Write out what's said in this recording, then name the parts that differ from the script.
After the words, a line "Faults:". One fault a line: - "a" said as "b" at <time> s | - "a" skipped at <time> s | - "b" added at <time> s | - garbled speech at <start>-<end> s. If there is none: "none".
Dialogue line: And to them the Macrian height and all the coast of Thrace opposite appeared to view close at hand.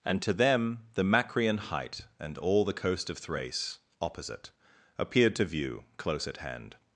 And to them the Macrian height and all the coast of Thrace opposite appeared to view close at hand.
Faults:
none